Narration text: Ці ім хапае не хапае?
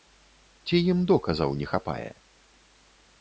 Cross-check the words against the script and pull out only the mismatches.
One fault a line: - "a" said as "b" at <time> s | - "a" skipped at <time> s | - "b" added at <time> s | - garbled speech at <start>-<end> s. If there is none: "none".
- "хапае" said as "доказаў" at 1.1 s